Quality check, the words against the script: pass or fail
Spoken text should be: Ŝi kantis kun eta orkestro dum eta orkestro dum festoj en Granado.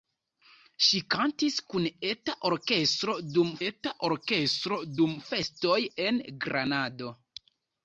pass